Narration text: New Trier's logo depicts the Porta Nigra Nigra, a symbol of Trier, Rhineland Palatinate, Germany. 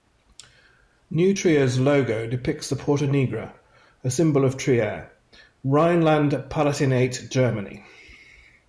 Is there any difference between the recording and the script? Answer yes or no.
yes